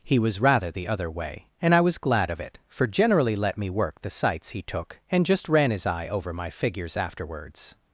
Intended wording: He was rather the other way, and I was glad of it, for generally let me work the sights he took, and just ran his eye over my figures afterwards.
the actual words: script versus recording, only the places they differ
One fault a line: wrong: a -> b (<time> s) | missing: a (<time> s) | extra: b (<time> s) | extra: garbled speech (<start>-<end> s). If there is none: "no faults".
no faults